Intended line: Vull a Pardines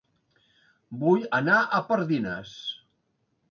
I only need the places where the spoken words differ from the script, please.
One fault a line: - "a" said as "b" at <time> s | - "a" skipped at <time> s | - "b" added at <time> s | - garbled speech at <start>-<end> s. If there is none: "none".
- "anar" added at 1.4 s